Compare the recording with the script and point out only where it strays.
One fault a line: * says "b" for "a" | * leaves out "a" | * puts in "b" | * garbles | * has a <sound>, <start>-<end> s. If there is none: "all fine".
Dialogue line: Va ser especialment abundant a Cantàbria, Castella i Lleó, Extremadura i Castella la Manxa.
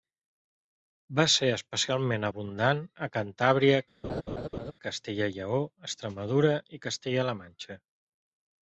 * has a laugh, 4.0-4.7 s